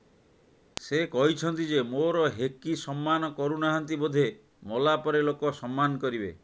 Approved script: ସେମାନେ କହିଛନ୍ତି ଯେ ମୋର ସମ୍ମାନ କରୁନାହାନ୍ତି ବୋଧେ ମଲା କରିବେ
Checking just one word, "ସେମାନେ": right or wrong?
wrong